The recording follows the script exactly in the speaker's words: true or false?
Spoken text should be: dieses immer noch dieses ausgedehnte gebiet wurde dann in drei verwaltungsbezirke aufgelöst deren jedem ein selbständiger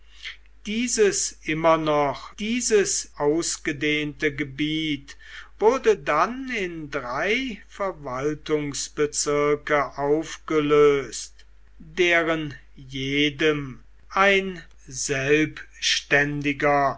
true